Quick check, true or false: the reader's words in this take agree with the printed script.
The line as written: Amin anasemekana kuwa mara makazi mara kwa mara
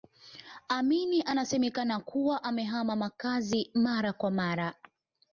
false